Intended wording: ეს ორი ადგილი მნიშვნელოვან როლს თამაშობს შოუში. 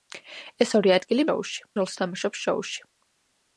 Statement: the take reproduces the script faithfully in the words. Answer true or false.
false